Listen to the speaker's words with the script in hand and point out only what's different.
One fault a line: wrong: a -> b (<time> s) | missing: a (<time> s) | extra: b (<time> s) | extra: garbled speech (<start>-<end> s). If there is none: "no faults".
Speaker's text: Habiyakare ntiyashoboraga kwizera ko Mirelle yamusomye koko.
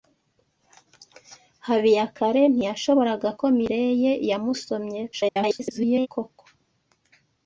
missing: kwizera (3.3 s)
extra: garbled speech (5.1-6.1 s)